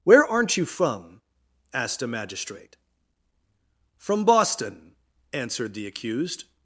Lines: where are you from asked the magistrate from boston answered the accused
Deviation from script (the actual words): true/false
true